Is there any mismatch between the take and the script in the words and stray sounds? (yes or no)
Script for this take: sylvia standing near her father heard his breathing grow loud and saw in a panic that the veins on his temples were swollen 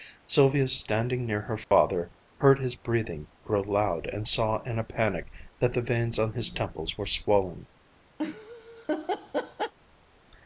yes